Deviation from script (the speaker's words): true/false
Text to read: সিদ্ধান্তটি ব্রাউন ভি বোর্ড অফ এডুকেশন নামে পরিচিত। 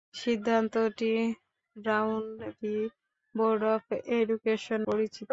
true